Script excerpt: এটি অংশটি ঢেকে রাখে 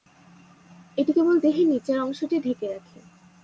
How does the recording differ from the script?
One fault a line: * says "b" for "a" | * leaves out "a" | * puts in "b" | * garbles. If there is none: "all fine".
* puts in "কেবল দেহের নিচের"